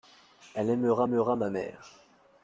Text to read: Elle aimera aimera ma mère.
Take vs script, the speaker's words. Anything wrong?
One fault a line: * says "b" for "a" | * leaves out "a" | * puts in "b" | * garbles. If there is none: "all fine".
all fine